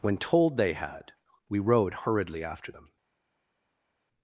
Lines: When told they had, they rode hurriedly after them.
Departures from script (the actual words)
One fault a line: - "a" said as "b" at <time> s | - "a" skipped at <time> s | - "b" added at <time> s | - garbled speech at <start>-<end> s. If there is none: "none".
- "they" said as "we" at 1.5 s